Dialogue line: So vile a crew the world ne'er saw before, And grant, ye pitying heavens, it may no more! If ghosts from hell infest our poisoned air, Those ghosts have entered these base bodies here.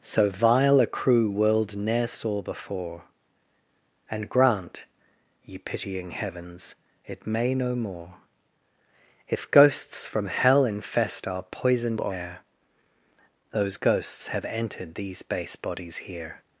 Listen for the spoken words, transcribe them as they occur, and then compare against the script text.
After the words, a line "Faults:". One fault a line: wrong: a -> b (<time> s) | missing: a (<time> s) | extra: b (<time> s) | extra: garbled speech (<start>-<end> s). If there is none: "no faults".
So vile a crew world ne'er saw before, And grant, ye pitying heavens, it may no more! If ghosts from hell infest our poisoned air, Those ghosts have entered these base bodies here.
Faults:
missing: the (1.3 s)